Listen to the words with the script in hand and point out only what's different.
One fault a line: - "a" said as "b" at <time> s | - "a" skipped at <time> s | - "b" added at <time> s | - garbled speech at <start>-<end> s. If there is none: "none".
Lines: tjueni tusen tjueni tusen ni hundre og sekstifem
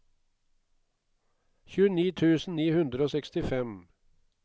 - "tjueni tusen" skipped at 2.6 s